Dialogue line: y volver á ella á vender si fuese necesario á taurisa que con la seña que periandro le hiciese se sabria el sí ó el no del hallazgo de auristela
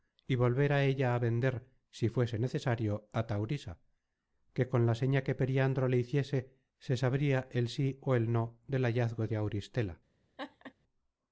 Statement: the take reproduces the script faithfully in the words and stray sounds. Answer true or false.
false